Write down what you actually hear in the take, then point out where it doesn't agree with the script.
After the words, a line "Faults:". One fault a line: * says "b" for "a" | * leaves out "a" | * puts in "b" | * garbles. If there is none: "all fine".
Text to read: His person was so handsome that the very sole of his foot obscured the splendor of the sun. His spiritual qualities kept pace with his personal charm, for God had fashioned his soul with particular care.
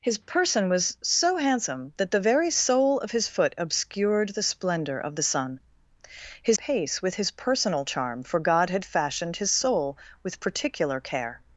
His person was so handsome that the very sole of his foot obscured the splendor of the sun. His pace with his personal charm, for God had fashioned his soul with particular care.
Faults:
* leaves out "spiritual qualities kept"